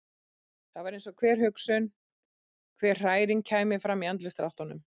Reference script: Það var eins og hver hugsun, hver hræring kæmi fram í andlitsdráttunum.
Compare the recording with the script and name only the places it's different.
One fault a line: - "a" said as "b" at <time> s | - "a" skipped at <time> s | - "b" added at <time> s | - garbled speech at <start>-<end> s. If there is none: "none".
none